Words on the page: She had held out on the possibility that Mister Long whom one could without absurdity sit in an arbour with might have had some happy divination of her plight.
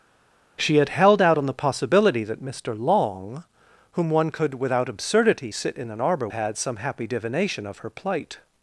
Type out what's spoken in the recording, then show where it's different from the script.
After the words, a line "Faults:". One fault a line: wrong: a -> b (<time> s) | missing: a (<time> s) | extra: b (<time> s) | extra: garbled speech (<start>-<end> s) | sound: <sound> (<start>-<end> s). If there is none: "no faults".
She had held out on the possibility that Mister Long whom one could without absurdity sit in an arbour had some happy divination of her plight.
Faults:
missing: with might have (6.3 s)